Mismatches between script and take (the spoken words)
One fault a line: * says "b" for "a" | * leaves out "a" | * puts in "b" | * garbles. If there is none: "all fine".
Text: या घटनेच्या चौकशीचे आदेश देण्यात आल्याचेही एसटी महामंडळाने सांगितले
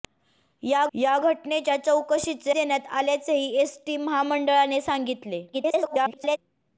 * puts in "या"
* leaves out "आदेश"
* garbles